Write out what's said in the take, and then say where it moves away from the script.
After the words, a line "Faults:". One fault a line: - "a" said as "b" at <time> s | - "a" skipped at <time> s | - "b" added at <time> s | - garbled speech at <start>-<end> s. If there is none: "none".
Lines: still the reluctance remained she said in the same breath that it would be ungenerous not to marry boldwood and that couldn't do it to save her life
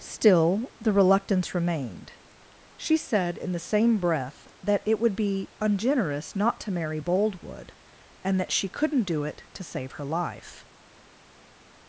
still the reluctance remained she said in the same breath that it would be ungenerous not to marry boldwood and that she couldn't do it to save her life
Faults:
- "she" added at 8.5 s